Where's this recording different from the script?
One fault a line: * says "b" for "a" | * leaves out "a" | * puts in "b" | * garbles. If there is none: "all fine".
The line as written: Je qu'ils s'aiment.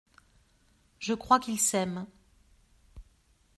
* puts in "crois"